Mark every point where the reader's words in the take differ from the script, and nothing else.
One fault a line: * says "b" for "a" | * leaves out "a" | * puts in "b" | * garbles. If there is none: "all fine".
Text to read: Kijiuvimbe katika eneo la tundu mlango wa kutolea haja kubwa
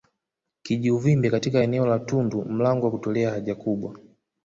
all fine